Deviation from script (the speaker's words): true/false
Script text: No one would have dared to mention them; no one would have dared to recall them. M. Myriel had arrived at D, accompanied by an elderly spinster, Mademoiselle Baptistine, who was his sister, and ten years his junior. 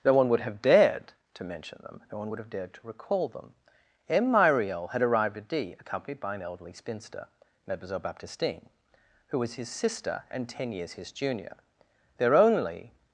true